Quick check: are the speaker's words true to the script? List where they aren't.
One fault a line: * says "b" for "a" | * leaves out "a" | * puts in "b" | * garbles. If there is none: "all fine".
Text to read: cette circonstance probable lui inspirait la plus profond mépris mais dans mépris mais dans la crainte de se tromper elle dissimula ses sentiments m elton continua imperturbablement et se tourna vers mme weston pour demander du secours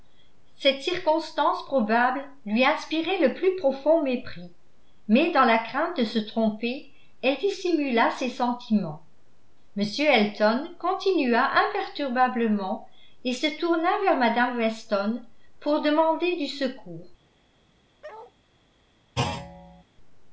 * says "le" for "la"
* leaves out "mépris mais dans"